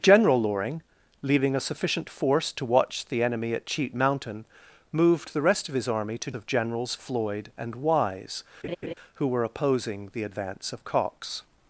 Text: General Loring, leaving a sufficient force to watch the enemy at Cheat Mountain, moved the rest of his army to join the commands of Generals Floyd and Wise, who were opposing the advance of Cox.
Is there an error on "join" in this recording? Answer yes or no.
yes